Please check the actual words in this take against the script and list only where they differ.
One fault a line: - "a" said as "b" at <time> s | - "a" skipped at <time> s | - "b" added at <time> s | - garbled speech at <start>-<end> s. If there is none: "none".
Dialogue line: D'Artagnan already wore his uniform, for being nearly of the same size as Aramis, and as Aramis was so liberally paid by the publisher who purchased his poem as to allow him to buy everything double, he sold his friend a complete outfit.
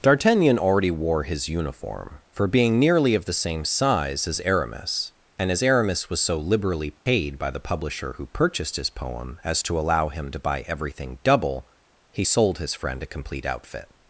none